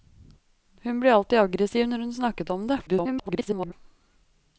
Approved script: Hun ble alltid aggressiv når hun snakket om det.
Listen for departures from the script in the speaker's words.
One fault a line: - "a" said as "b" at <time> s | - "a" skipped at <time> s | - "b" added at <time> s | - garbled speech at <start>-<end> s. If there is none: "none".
- garbled speech at 2.9-3.7 s